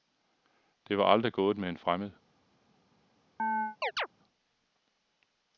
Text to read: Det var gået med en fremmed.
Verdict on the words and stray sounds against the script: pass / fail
fail